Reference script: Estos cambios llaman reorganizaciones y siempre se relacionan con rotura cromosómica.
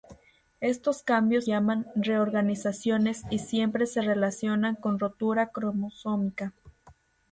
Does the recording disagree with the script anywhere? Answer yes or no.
no